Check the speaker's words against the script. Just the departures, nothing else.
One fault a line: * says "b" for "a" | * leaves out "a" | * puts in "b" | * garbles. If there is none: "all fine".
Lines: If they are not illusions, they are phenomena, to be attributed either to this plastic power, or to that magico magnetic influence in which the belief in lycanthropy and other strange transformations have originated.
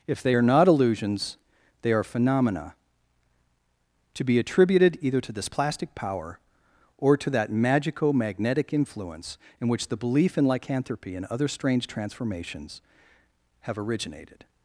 all fine